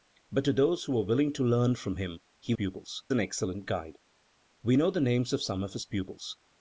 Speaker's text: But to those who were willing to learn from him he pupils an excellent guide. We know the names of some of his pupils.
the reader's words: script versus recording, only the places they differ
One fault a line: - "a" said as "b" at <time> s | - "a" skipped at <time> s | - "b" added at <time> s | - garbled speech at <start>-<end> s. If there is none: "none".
none